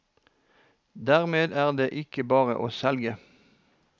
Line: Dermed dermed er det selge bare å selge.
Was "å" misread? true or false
false